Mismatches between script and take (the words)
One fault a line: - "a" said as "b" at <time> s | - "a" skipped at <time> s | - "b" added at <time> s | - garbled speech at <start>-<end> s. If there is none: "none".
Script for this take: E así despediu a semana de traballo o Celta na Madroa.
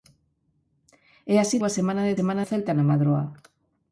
- "despediu" skipped at 1.6 s
- "traballo" said as "semana" at 2.2 s